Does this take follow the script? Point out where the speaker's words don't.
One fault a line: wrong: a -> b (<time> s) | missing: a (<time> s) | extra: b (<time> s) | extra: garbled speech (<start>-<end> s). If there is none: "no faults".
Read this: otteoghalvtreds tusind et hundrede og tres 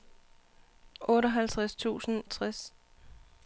missing: et hundrede (2.2 s)